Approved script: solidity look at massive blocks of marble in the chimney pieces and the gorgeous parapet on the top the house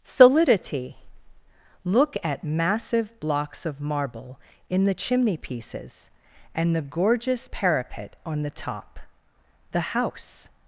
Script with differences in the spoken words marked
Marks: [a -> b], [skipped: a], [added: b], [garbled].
solidity look at massive blocks of marble in the chimney pieces and the gorgeous parapet on the top the house